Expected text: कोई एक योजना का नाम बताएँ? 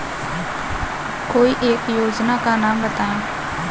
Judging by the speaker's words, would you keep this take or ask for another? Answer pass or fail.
pass